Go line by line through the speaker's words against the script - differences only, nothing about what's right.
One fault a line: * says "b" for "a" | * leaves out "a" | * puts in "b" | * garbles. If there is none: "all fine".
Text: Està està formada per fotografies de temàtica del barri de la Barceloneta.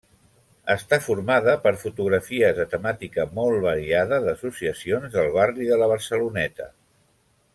* leaves out "està"
* puts in "molt variada d'associacions"